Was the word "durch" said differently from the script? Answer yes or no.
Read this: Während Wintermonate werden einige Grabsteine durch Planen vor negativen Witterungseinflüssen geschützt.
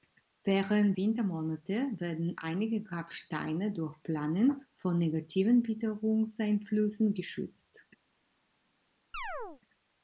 no